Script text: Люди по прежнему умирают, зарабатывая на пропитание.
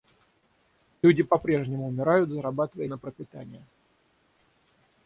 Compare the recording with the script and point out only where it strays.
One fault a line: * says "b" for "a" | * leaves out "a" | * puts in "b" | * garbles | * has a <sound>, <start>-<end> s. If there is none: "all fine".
all fine